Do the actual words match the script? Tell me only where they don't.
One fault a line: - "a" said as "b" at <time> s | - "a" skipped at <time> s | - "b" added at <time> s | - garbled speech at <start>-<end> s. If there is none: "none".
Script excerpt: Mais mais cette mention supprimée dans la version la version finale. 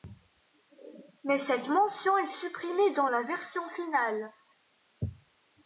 - "mais" skipped at 1.4 s
- "est" added at 2.2 s
- "la version" skipped at 3.7 s